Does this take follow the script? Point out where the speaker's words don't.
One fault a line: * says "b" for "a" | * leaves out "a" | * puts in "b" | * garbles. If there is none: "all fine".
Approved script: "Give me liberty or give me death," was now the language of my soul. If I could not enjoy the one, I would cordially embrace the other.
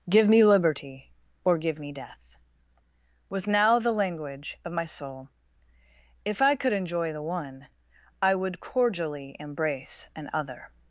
* leaves out "not"
* says "an" for "the"